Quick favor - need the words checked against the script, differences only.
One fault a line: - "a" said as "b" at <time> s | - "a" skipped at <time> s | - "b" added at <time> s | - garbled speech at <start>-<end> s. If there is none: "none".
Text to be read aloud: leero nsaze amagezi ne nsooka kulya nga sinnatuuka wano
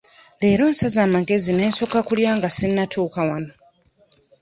none